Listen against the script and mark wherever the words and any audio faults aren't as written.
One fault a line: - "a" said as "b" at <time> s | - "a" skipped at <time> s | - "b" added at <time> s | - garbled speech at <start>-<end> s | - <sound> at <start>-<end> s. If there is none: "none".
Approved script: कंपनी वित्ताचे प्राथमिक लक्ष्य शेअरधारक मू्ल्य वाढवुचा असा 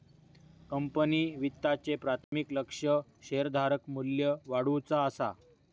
- dropout at 2.2-2.3 s